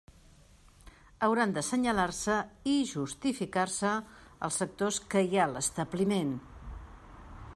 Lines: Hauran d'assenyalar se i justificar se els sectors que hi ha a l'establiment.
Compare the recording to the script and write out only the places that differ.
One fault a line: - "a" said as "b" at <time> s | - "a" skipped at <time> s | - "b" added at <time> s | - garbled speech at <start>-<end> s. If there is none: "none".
none